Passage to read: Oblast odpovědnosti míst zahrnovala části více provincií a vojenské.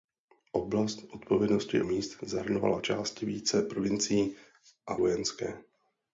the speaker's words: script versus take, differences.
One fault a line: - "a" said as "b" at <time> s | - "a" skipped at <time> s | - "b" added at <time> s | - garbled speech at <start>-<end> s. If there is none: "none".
none